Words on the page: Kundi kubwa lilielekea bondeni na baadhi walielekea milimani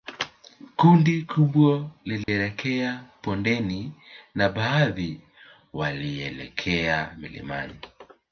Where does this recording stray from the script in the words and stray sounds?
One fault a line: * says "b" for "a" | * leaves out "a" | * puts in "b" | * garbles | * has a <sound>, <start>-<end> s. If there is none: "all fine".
* has a dropout, 2.2-2.3 s